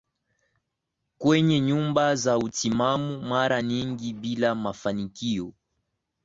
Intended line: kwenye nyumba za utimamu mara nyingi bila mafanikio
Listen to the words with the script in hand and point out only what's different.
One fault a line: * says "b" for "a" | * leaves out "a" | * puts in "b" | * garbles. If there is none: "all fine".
all fine